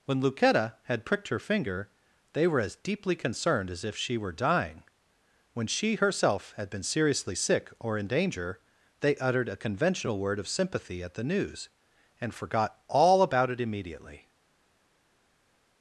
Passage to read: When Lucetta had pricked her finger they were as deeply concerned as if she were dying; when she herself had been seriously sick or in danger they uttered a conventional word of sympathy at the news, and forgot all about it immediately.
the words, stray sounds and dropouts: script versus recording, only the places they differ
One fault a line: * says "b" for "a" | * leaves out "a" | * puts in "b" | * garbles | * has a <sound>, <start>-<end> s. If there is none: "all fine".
all fine